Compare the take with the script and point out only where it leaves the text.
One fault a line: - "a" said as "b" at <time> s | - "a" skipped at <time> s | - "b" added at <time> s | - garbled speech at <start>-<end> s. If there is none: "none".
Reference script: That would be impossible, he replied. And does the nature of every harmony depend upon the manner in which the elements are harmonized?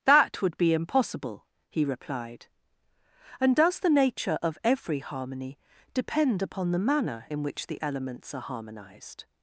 none